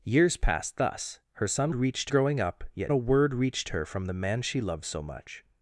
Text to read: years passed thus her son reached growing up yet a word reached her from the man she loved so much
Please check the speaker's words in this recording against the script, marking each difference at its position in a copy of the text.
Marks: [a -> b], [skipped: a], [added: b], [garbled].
years passed thus her son reached growing up yet a word reached her from the man she loved so much